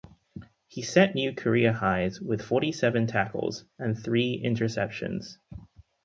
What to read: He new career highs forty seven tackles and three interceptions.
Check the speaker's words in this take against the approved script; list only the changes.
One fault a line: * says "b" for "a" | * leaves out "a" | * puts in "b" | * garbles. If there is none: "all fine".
* puts in "set"
* puts in "with"